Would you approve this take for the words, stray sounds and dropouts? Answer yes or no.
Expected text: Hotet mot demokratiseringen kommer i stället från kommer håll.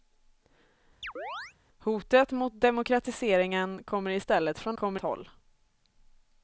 no